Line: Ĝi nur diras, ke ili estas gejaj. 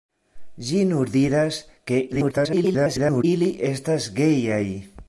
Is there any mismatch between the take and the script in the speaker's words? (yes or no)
yes